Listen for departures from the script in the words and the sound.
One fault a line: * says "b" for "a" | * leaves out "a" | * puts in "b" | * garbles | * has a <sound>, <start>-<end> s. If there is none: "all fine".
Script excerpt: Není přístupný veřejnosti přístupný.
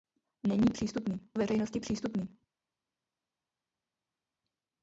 all fine